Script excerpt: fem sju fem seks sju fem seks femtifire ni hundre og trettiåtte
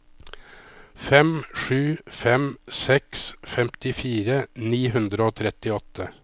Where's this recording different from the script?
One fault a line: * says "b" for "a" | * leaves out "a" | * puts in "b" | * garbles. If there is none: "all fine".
* leaves out "sju fem seks"